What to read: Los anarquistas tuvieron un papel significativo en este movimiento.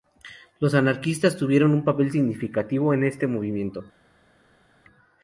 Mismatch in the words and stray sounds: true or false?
false